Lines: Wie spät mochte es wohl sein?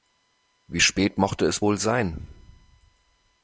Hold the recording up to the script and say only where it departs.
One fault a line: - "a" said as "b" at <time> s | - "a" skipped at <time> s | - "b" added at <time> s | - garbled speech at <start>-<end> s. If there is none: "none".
none